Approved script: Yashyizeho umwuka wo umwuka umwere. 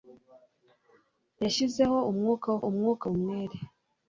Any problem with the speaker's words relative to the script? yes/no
no